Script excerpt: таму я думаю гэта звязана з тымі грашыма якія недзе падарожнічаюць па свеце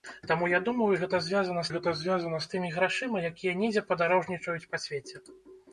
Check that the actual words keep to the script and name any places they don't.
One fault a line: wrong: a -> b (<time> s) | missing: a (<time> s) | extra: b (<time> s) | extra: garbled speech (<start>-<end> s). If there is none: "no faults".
extra: гэта звязана (1.7 s)